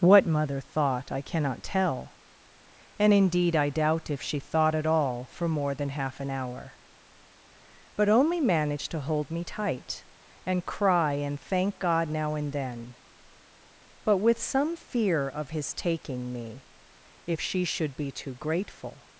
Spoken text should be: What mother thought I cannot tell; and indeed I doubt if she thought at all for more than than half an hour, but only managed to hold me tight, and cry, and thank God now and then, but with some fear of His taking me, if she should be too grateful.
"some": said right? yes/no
yes